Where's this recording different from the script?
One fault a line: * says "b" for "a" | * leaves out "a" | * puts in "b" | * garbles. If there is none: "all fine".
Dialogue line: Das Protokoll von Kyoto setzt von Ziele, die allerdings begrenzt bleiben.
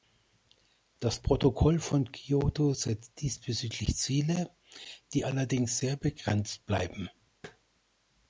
* says "diesbezüglich" for "von"
* puts in "sehr"